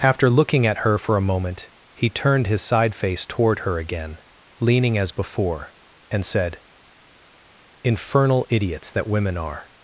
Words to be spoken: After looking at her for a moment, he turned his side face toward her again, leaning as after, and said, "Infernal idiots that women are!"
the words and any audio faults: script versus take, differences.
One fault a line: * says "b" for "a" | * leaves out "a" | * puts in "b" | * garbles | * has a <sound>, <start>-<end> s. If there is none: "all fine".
* says "before" for "after"